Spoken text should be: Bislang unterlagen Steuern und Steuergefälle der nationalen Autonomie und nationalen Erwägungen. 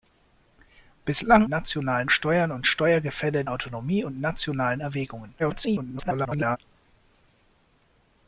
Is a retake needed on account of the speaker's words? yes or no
yes